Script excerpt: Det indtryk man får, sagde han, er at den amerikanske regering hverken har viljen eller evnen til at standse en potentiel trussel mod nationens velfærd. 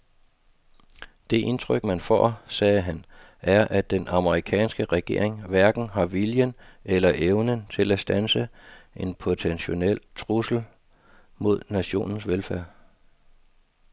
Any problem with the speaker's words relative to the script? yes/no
no